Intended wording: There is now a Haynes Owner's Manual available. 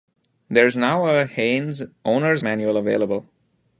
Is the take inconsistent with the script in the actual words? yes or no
no